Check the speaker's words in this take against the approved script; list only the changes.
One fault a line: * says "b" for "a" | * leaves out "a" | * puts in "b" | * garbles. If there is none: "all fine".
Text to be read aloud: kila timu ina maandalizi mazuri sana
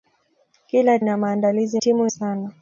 * leaves out "timu"
* says "timu" for "mazuri"